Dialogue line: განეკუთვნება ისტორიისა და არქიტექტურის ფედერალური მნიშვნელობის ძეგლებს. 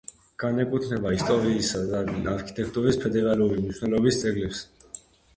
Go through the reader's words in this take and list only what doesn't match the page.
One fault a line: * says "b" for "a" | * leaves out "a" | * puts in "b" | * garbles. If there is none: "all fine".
all fine